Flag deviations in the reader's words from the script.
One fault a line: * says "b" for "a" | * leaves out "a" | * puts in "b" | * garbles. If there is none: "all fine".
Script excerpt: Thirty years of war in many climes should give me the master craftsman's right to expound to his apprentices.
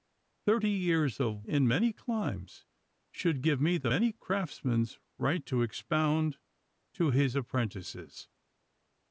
* leaves out "war"
* says "many" for "master"